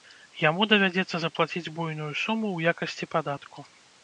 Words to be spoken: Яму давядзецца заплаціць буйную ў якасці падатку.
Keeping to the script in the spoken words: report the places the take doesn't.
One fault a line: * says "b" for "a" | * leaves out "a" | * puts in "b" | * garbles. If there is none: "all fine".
* puts in "суму"